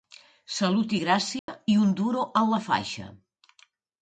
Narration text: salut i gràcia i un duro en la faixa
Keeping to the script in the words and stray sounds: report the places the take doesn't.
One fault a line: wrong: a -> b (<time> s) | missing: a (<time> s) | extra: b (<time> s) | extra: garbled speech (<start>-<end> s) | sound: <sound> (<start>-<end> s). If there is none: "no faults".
sound: dropout (1.4-1.5 s)